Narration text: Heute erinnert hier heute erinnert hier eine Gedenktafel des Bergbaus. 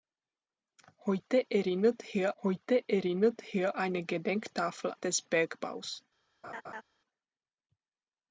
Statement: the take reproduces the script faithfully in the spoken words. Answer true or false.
true